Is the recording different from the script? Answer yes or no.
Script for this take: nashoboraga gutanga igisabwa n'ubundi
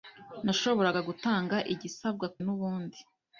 no